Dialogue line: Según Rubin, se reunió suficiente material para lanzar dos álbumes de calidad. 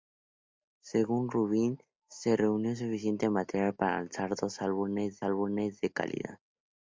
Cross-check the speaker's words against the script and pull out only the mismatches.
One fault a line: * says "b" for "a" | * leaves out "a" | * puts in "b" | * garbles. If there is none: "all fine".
* puts in "álbumes"